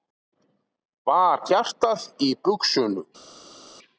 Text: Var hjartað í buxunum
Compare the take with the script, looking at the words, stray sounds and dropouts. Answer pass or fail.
pass